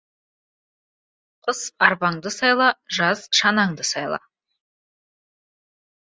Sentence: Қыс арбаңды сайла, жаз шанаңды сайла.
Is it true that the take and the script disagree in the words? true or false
false